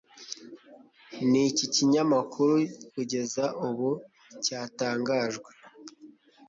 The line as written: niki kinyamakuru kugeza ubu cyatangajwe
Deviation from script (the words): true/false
false